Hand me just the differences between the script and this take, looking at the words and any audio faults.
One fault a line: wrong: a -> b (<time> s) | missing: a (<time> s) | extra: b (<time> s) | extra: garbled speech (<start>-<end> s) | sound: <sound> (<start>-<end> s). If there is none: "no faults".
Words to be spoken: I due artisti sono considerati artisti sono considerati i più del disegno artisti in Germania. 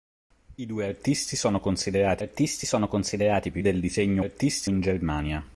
no faults